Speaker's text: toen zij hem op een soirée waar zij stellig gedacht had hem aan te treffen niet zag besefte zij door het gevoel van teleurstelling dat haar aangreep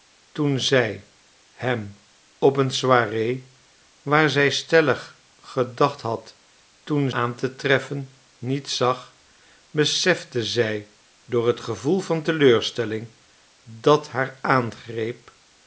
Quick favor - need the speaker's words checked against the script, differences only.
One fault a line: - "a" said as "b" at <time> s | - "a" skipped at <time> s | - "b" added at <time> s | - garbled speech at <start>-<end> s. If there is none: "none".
- "hem" said as "toen" at 6.8 s